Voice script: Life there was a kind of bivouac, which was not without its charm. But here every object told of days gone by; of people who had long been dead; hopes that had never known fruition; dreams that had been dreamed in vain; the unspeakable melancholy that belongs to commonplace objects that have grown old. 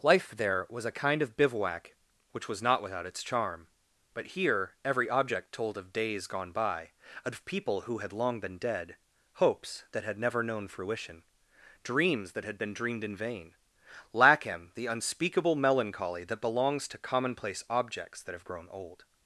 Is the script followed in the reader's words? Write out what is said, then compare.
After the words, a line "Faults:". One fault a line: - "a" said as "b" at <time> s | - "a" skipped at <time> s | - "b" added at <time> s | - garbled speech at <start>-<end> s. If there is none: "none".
Life there was a kind of bivouac, which was not without its charm. But here every object told of days gone by; of people who had long been dead; hopes that had never known fruition; dreams that had been dreamed in vain; lack him the unspeakable melancholy that belongs to commonplace objects that have grown old.
Faults:
- "lack him" added at 14.1 s